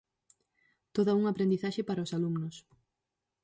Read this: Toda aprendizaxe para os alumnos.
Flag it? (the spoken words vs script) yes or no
yes